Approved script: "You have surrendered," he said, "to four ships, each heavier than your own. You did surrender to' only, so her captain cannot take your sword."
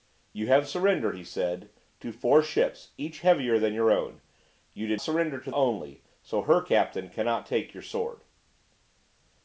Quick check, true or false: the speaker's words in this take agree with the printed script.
true